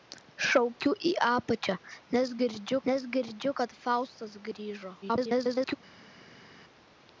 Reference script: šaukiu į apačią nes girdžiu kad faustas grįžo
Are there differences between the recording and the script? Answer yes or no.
yes